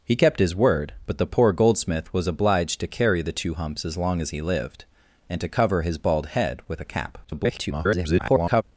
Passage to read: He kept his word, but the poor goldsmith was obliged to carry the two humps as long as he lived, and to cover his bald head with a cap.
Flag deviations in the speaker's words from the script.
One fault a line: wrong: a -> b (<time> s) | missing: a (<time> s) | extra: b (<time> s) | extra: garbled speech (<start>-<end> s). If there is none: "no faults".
extra: garbled speech (7.2-8.6 s)